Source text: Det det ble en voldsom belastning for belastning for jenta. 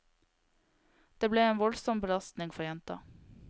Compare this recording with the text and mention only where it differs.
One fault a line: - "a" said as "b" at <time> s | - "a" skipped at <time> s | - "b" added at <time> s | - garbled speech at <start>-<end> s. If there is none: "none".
- "det" skipped at 1.3 s
- "belastning for" skipped at 2.6 s